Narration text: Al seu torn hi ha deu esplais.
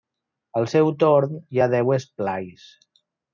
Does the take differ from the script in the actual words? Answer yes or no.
no